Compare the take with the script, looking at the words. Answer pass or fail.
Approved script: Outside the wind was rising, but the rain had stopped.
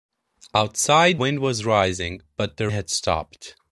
fail